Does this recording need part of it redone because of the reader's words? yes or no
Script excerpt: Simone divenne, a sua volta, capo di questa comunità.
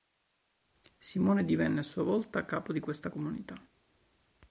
no